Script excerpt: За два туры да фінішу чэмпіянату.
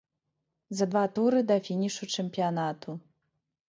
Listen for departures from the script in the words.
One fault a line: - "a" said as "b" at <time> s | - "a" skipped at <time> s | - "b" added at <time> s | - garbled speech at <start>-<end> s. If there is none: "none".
none